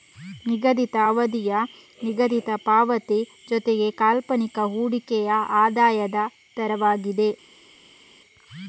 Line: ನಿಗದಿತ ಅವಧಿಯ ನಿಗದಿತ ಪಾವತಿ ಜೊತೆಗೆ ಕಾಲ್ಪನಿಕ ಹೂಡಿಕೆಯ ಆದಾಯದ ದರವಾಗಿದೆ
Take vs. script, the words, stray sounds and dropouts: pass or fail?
pass